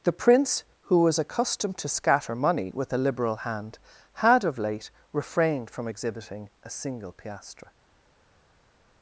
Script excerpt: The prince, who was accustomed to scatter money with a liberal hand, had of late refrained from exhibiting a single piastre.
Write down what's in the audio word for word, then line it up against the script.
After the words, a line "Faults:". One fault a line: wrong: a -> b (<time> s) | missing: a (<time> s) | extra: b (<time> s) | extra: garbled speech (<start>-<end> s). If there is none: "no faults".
The prince, who was accustomed to scatter money with a liberal hand, had of late refrained from exhibiting a single piastre.
Faults:
no faults